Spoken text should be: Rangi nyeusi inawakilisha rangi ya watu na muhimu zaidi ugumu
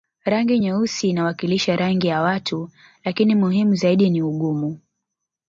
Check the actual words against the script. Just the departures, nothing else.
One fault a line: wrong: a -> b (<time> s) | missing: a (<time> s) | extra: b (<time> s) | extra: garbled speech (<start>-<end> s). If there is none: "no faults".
wrong: na -> lakini (3.0 s)
extra: ni (4.1 s)